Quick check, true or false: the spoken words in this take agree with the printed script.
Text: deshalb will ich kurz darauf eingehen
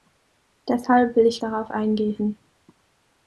false